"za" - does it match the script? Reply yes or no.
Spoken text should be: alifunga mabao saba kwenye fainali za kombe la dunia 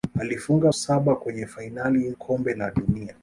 no